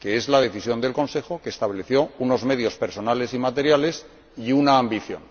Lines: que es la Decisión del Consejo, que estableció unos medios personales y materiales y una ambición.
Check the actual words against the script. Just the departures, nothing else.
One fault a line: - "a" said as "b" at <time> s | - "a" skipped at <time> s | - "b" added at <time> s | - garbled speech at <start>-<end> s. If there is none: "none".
none